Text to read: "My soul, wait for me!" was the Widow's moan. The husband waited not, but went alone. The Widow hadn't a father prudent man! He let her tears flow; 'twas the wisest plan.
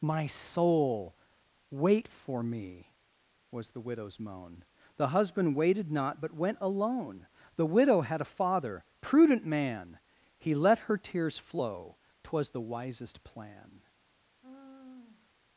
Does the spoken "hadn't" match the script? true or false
false